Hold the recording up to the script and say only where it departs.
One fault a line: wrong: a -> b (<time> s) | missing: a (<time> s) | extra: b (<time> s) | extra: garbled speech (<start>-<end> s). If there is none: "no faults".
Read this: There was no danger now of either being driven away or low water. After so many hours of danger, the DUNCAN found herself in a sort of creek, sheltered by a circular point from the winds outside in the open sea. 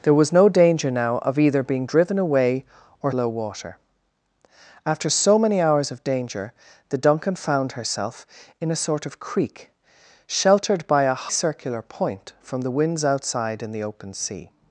no faults